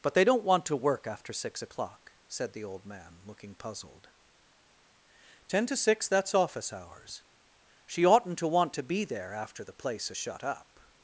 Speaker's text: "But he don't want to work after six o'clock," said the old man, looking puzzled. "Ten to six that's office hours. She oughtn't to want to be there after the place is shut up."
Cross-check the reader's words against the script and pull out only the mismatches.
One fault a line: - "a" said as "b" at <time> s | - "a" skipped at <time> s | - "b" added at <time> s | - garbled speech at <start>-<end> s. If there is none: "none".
- "he" said as "they" at 0.1 s